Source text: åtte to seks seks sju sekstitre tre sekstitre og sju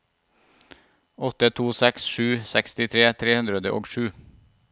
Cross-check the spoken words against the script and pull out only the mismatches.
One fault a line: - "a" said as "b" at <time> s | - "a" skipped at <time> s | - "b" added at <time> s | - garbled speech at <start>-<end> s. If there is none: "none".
- "seks" skipped at 2.1 s
- "sekstitre" said as "hundre" at 3.4 s